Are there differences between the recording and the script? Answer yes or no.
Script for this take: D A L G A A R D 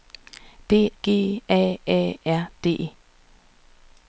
yes